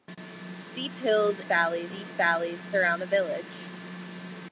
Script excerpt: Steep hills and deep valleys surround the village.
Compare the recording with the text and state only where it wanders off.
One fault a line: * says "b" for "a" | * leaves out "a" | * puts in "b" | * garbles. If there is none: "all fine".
* says "valleys" for "and"